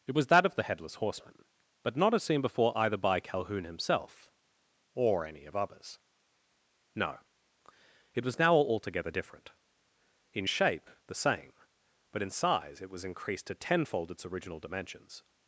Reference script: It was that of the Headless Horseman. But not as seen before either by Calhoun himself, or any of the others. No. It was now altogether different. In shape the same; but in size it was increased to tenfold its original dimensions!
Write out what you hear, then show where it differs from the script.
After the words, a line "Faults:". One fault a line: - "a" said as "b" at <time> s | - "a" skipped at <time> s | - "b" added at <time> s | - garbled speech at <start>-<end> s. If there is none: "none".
It was that of the Headless Horseman. But not as seen before either by Calhoun himself, or any of others. No. It was now altogether different. In shape the same; but in size it was increased to tenfold its original dimensions!
Faults:
- "the" skipped at 5.5 s